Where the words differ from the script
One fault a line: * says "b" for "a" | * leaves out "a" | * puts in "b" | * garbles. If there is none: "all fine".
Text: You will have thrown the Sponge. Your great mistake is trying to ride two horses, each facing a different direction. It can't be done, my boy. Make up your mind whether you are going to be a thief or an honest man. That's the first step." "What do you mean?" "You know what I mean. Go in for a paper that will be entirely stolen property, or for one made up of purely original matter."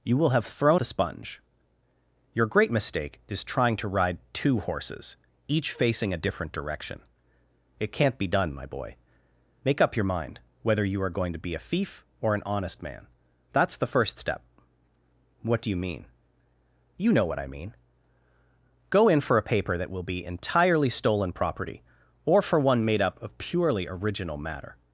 all fine